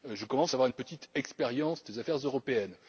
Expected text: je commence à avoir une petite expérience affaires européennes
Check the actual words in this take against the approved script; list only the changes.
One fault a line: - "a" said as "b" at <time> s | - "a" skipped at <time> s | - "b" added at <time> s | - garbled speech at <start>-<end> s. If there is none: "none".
- "des" added at 1.8 s